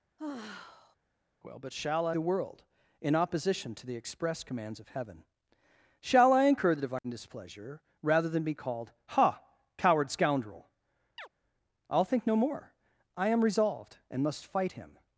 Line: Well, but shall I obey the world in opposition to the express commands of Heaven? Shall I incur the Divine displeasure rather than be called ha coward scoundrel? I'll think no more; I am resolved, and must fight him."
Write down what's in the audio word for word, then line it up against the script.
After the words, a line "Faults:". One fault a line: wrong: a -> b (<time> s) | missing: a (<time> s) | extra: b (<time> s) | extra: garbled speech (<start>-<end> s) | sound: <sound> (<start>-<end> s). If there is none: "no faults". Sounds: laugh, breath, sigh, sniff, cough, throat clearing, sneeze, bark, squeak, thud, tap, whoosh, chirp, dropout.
Well, but shall I the world in opposition to the express commands of Heaven? Shall I incur the Divine displeasure rather than be called ha coward scoundrel? I'll think no more; I am resolved, and must fight him."
Faults:
sound: sigh (0.2-1.0 s)
missing: obey (2.2 s)
sound: chirp (11.2-11.3 s)